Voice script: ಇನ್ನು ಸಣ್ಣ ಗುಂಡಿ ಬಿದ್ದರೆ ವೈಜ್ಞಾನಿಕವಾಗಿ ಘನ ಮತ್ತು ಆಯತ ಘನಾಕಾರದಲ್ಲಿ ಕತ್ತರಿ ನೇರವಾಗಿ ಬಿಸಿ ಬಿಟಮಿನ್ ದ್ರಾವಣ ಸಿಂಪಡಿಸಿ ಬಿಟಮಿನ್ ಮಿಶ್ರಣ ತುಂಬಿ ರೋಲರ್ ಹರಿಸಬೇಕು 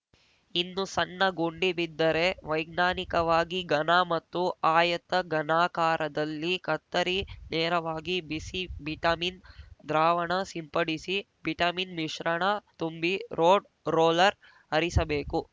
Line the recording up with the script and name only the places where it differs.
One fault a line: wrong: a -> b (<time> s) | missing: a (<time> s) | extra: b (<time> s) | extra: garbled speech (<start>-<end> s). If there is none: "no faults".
extra: ರೋಡ್ (13.4 s)